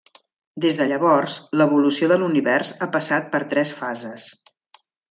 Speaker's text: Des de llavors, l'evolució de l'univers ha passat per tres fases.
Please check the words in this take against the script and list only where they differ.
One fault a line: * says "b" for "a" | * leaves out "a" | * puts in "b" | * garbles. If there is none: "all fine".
all fine